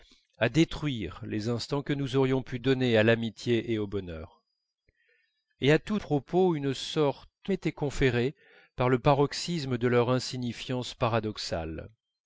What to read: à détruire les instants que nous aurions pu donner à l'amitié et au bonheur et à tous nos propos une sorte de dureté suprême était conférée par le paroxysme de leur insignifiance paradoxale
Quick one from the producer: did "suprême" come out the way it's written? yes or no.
no